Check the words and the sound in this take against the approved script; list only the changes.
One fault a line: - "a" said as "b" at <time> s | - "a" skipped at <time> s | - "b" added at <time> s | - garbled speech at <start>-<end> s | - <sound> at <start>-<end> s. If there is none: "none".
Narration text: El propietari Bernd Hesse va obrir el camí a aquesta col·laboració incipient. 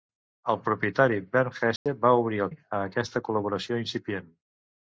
- dropout at 1.8-1.9 s
- "camí" skipped at 2.5 s